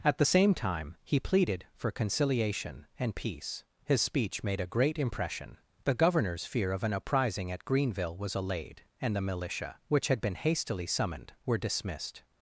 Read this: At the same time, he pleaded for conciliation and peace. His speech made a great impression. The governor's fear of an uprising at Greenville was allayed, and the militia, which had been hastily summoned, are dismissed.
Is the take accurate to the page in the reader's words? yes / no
no